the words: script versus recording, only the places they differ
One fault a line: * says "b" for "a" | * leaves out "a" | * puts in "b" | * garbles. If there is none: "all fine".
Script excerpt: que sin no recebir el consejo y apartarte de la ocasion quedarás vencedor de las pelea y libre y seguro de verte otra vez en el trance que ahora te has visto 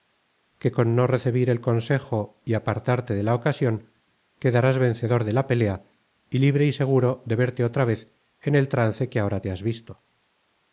* says "con" for "sin"
* says "la" for "las"